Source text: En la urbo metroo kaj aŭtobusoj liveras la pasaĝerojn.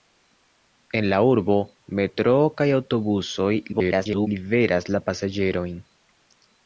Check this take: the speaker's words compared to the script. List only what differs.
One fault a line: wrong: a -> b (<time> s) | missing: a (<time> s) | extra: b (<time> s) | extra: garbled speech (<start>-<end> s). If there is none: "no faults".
extra: garbled speech (3.7-4.3 s)